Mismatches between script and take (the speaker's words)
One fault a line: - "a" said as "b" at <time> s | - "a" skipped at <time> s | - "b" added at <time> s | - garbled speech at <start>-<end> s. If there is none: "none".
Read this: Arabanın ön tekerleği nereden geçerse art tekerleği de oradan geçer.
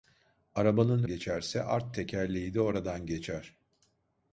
- "ön tekerleği nereden" skipped at 1.0 s